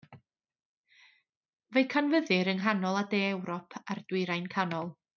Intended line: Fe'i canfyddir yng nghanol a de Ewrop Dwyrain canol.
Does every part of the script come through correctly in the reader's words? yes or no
no